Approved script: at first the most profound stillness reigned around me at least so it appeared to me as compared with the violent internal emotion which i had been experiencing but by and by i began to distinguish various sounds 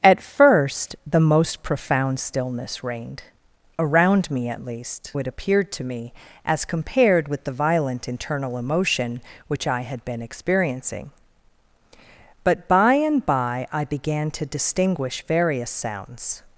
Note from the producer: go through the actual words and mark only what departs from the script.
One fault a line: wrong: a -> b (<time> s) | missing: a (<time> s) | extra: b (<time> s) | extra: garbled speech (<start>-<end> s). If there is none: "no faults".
missing: so (5.1 s)